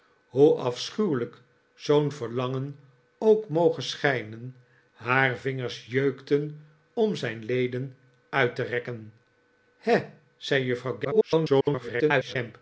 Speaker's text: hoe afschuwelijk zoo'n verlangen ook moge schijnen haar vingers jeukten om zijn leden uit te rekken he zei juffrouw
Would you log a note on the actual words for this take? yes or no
yes